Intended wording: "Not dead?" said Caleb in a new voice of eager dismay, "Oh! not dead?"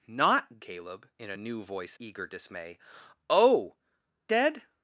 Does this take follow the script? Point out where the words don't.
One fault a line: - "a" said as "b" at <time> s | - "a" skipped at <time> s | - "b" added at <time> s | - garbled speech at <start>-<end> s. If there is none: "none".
- "dead said" skipped at 0.6 s
- "of" skipped at 2.0 s
- "not" skipped at 3.8 s